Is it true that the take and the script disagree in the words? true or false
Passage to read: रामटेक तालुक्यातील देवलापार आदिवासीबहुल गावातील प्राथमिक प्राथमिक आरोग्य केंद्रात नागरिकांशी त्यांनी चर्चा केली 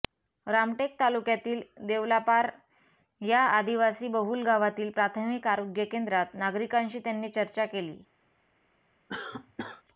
true